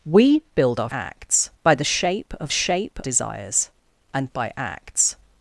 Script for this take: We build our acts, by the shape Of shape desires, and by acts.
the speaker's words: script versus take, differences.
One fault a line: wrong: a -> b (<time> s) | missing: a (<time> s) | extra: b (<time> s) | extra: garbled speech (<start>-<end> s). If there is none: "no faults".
no faults